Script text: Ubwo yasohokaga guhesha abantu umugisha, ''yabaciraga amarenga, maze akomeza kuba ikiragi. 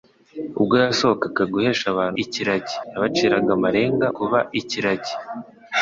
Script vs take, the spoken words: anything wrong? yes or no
yes